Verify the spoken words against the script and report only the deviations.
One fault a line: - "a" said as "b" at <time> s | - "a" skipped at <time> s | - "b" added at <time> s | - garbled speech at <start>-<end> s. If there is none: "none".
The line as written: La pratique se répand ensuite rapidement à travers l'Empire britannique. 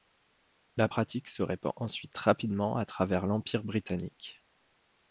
none